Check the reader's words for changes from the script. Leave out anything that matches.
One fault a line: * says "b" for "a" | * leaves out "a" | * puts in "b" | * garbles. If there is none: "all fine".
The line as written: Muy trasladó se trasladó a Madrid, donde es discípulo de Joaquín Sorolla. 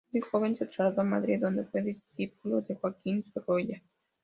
* says "joven" for "trasladó"
* says "fue" for "es"